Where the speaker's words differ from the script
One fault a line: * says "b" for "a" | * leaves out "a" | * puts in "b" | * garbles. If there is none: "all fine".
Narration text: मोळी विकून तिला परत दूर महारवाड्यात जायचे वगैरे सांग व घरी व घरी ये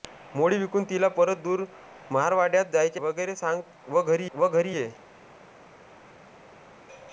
all fine